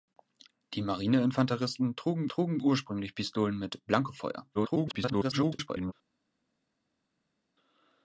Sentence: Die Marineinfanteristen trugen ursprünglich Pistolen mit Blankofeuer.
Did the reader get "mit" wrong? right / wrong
right